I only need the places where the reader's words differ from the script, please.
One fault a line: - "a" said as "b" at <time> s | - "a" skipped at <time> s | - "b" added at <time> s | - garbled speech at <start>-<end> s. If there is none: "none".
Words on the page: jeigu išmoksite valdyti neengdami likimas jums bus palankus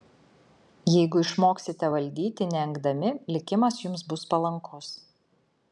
none